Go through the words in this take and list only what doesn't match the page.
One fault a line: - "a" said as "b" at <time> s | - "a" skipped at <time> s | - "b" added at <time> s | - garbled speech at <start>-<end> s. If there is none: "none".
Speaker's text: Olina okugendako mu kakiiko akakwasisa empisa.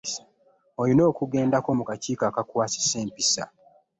none